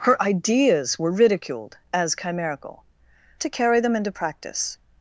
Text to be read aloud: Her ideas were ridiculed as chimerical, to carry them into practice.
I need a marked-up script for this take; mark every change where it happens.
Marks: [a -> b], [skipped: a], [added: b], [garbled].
Her ideas were ridiculed as chimerical, to carry them into practice.